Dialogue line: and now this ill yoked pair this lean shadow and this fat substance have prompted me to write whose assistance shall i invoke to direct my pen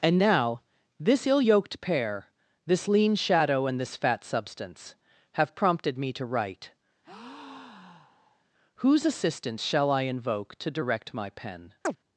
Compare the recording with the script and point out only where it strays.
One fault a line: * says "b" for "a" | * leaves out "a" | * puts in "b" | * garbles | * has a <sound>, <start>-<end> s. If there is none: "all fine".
* has a breath, 7.0-8.4 s
* has a chirp, 11.8-12.0 s